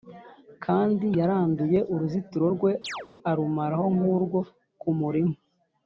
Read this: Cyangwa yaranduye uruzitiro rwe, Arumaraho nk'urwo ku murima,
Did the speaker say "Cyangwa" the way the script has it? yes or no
no